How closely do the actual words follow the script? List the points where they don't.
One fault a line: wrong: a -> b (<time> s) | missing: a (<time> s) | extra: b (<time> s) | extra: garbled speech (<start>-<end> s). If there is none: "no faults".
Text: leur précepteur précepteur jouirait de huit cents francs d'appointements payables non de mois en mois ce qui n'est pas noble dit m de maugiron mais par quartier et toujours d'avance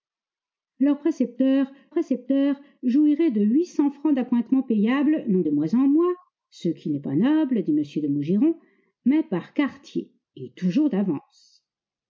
no faults